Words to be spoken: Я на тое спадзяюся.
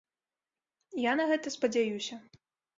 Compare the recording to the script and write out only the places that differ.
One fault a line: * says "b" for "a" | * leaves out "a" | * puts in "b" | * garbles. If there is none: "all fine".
* says "гэта" for "тое"